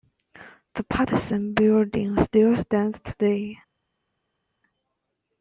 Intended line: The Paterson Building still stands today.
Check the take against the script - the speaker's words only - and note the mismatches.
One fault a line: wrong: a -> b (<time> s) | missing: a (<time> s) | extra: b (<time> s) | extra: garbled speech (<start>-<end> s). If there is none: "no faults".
no faults